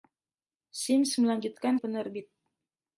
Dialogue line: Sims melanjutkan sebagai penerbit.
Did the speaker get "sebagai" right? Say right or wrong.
wrong